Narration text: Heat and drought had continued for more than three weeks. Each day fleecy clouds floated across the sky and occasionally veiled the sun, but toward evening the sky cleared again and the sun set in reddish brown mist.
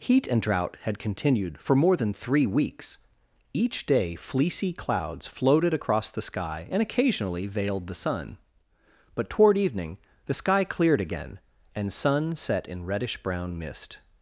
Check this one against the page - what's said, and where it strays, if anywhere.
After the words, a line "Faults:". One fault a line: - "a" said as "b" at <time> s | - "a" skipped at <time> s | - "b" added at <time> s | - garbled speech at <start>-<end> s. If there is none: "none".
Heat and drought had continued for more than three weeks. Each day fleecy clouds floated across the sky and occasionally veiled the sun, but toward evening the sky cleared again and sun set in reddish brown mist.
Faults:
- "the" skipped at 11.9 s